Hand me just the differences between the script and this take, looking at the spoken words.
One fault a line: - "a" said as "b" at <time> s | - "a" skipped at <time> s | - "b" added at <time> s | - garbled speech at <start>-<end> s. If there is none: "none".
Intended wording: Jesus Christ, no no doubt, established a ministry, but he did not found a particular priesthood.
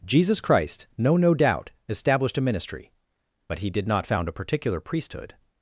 none